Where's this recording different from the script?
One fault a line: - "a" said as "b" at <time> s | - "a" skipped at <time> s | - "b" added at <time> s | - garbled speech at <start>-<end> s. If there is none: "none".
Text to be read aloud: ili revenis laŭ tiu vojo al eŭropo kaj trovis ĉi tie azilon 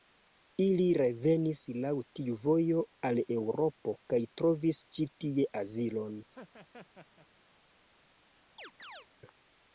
none